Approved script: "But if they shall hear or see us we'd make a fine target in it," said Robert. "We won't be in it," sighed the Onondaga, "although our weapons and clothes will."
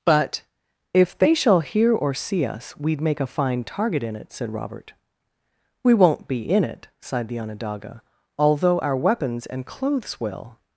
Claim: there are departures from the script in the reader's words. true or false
false